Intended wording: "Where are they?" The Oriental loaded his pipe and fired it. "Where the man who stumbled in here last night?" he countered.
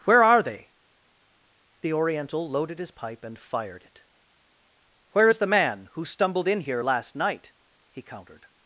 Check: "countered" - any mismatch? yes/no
no